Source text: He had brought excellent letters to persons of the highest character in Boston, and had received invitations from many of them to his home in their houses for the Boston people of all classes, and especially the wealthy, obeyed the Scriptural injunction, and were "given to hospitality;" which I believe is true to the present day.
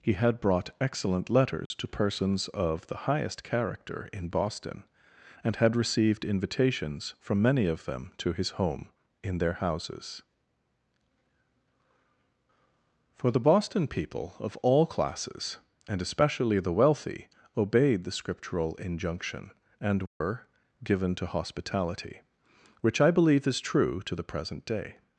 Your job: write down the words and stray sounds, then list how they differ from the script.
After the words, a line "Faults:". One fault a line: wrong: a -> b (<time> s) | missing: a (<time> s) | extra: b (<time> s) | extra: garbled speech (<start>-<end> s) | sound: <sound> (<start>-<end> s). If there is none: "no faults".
He had brought excellent letters to persons of the highest character in Boston, and had received invitations from many of them to his home in their houses for the Boston people of all classes, and especially the wealthy, obeyed the Scriptural injunction, and were "given to hospitality;" which I believe is true to the present day.
Faults:
sound: dropout (1.7-1.7 s)
sound: dropout (20.1-20.2 s)